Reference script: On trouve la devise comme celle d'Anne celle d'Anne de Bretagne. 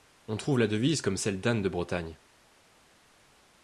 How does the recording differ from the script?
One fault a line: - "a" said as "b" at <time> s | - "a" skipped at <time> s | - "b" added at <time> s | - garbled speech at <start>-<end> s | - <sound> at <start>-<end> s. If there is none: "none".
- "celle d'Anne" skipped at 1.6 s